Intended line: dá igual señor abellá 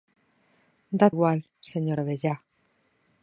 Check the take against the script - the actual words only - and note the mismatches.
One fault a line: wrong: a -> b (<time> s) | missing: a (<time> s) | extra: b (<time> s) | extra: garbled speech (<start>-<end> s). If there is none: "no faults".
no faults